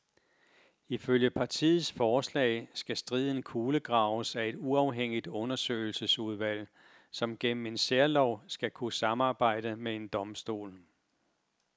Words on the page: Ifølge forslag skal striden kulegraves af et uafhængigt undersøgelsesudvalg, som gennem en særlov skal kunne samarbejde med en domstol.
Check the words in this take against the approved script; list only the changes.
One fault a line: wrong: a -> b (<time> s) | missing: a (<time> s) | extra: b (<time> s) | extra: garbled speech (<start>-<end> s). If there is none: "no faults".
extra: partiets (1.3 s)